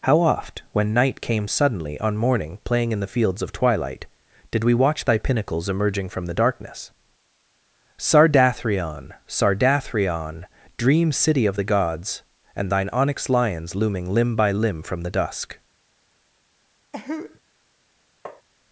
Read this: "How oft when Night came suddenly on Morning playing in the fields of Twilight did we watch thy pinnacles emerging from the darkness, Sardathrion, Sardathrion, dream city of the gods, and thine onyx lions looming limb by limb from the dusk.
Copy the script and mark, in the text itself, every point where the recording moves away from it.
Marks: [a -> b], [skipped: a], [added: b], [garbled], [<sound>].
"How oft when Night came suddenly on Morning playing in the fields of Twilight did we watch thy pinnacles emerging from the darkness, Sardathrion, Sardathrion, dream city of the gods, and thine onyx lions looming limb by limb from the dusk. [cough] [tap]